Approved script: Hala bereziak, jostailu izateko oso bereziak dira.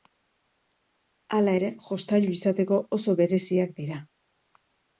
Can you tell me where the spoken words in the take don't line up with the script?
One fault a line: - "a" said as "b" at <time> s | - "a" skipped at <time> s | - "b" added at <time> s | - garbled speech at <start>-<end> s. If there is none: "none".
- "bereziak" said as "ere" at 1.6 s